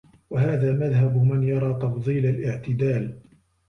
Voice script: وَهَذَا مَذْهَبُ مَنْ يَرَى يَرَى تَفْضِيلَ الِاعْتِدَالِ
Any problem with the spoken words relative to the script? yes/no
yes